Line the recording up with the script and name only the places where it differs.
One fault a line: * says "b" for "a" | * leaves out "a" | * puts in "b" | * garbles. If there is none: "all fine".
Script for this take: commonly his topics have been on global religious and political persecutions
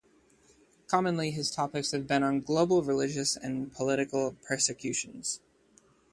all fine